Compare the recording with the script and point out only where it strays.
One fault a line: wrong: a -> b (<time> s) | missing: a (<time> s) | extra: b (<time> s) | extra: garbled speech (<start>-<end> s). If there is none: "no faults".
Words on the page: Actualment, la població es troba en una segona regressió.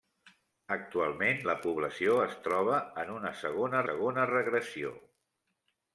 extra: segona (3.9 s)